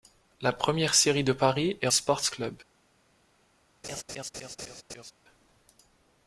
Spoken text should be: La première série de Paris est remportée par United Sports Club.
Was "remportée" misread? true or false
true